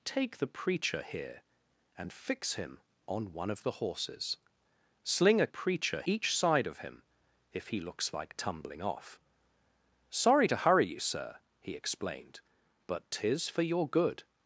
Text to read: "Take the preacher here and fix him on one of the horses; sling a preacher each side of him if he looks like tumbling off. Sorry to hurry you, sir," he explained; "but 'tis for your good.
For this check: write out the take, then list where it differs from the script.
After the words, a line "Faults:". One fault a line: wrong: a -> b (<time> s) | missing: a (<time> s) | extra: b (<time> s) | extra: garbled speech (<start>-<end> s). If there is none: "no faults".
"Take the preacher here and fix him on one of the horses; sling a preacher each side of him if he looks like tumbling off. Sorry to hurry you, sir," he explained; "but 'tis for your good.
Faults:
no faults